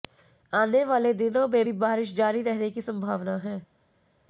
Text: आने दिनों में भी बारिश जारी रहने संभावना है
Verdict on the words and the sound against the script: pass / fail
fail